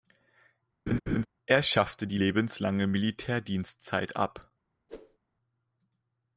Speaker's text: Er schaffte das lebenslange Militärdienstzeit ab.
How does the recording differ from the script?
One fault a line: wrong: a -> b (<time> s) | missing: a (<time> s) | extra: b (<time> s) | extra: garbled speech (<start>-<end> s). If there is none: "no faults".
wrong: das -> die (2.1 s)